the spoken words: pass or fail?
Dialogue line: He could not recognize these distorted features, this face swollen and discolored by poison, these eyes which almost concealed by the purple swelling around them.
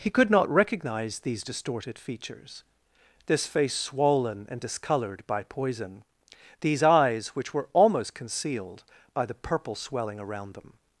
fail